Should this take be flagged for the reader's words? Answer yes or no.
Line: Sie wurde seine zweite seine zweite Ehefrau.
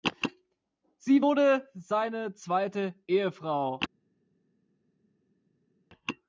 yes